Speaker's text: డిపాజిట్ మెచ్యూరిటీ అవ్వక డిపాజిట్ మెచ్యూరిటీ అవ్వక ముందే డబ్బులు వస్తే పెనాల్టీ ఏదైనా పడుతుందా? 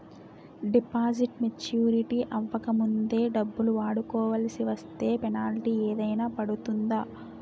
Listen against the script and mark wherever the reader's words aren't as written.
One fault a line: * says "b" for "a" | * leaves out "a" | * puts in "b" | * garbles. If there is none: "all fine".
* leaves out "డిపాజిట్ మెచ్యూరిటీ అవ్వక"
* puts in "వాడుకొవాల్సి"